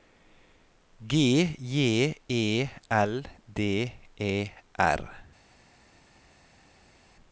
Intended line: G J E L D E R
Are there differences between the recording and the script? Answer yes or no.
no